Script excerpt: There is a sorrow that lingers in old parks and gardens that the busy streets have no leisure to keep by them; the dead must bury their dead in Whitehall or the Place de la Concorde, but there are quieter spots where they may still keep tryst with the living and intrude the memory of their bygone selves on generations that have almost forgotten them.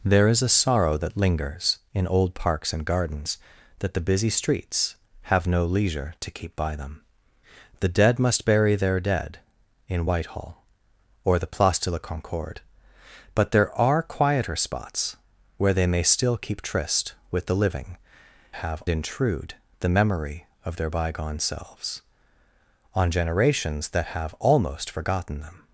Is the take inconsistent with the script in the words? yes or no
yes